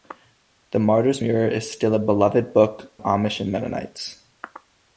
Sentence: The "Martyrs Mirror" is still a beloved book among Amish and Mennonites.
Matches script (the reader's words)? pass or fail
fail